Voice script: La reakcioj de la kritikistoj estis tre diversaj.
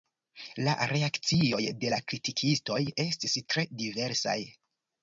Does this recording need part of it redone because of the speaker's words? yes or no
no